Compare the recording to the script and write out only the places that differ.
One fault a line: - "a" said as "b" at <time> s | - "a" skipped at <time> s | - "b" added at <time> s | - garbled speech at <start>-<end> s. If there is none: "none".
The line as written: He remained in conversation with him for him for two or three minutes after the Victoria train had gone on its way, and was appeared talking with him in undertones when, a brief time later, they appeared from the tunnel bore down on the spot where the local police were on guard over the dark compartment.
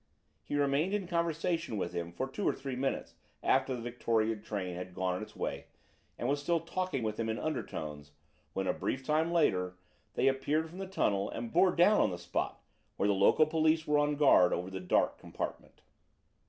- "him for" skipped at 2.3 s
- "appeared" said as "still" at 6.4 s
- "and" added at 11.3 s